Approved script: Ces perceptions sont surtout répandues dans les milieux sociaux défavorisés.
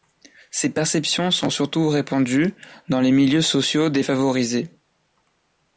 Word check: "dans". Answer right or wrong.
right